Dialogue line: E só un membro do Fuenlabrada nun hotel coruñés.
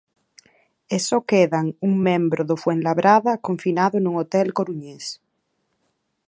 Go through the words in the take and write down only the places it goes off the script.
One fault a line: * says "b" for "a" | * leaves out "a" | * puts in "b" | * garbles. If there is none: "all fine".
* puts in "quedan"
* puts in "confinado"